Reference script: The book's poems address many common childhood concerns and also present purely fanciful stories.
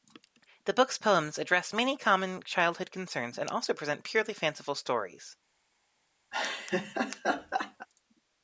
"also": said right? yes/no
yes